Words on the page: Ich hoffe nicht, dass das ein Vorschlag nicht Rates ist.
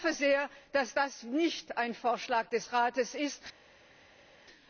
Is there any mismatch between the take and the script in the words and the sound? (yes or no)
yes